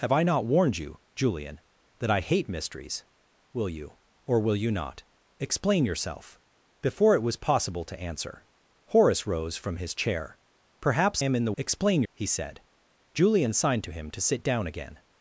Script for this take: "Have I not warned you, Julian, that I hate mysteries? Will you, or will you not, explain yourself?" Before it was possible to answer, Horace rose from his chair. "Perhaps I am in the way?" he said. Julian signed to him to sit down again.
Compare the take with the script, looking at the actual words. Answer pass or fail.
fail